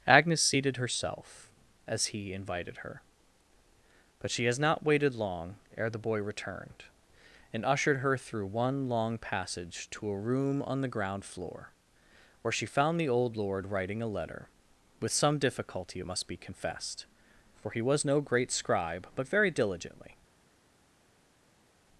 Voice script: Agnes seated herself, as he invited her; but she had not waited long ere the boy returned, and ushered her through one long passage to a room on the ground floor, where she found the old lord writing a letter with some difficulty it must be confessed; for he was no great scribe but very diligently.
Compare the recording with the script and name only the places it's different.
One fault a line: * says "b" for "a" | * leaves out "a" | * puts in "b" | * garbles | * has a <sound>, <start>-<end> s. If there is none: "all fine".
* says "has" for "had"